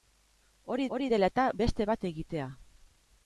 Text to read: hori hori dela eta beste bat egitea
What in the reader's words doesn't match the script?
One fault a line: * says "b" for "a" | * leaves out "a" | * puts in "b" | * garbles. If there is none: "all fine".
all fine